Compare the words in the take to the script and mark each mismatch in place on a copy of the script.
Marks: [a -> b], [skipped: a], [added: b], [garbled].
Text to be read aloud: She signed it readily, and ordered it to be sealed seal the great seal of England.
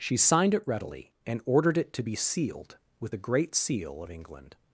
She signed it readily, and ordered it to be sealed [seal -> with] the great seal of England.